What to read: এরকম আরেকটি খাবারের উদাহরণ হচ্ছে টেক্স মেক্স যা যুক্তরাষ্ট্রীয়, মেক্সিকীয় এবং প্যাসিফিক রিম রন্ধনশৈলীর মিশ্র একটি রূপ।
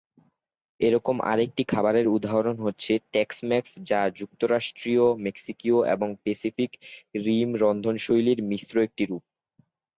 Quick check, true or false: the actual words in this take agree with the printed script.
true